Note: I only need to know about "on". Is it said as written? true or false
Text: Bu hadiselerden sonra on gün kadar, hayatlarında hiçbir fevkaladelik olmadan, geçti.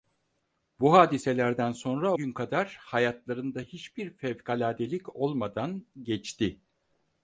false